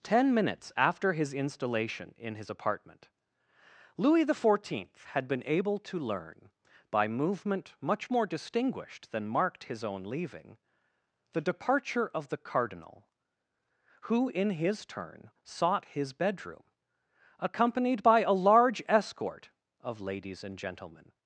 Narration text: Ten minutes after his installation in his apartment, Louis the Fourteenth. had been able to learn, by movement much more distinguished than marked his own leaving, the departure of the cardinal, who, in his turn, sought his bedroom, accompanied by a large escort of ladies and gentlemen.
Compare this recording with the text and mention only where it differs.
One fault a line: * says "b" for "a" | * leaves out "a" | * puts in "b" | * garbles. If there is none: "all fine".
all fine